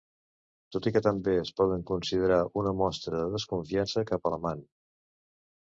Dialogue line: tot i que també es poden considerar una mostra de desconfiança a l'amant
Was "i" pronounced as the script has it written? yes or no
yes